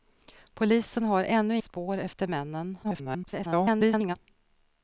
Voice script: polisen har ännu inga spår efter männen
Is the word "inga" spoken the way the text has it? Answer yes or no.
no